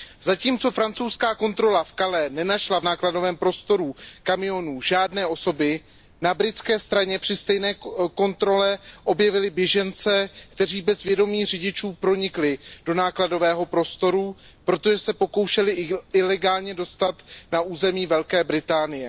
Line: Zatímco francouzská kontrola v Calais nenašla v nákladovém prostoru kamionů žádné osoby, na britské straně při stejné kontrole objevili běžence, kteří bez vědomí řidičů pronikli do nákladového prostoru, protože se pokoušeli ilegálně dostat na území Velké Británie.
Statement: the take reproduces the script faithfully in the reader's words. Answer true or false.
true